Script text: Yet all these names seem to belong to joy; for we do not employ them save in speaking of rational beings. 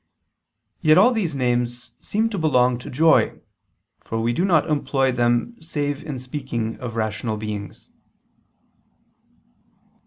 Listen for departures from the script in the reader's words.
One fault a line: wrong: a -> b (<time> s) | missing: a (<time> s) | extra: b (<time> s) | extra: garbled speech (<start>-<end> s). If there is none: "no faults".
no faults